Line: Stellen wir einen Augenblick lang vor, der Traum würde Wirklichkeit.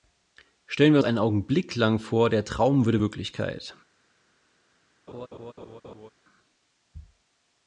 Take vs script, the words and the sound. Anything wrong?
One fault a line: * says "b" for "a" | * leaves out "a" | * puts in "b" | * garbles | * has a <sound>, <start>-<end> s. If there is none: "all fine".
* has a laugh, 5.1-6.1 s